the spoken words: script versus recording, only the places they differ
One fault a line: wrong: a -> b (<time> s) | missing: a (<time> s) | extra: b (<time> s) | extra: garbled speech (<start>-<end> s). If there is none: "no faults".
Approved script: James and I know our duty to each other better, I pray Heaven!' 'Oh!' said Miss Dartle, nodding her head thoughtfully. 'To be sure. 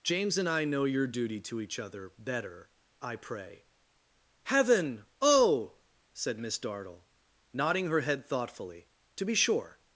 wrong: our -> your (0.8 s)